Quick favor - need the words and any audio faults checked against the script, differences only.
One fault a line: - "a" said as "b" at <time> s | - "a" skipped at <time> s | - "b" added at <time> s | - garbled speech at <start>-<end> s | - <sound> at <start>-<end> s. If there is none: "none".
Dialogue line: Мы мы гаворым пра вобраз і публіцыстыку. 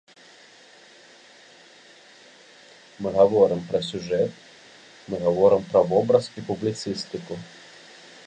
- "гаворым пра сюжэт" added at 3.2 s